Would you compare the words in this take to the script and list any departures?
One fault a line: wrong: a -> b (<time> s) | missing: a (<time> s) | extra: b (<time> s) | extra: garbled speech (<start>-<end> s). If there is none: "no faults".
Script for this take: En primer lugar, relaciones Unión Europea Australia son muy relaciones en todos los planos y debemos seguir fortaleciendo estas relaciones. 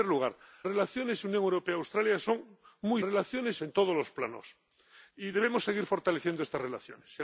no faults